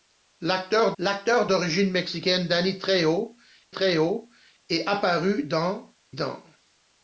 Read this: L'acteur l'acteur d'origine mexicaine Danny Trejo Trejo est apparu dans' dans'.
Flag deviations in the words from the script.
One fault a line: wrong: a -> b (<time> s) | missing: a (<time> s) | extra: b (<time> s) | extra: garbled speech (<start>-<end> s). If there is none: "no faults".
no faults